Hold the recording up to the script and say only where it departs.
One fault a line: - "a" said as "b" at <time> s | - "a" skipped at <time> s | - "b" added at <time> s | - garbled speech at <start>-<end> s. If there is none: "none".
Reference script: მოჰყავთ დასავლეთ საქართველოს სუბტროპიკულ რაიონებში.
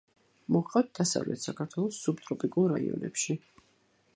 none